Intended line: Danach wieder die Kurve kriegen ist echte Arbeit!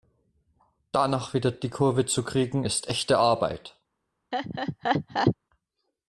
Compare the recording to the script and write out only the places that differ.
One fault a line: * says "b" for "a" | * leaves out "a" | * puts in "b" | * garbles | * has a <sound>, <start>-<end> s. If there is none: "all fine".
* puts in "zu"
* has a laugh, 4.3-5.4 s